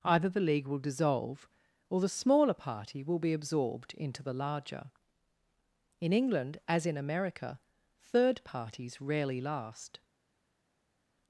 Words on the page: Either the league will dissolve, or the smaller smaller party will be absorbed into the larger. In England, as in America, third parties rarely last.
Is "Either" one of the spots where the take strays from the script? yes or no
no